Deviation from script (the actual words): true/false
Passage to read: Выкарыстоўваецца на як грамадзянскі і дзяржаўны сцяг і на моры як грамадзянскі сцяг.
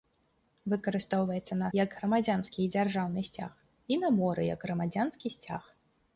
false